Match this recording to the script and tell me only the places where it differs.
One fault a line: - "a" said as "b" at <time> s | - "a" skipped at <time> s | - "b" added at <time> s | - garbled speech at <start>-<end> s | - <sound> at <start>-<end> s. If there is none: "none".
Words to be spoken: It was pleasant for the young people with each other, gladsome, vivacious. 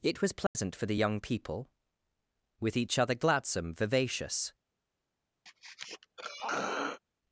- dropout at 0.5-0.6 s
- throat clearing at 5.5-7.0 s